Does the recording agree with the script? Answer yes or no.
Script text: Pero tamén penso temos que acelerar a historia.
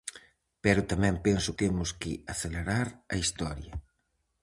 yes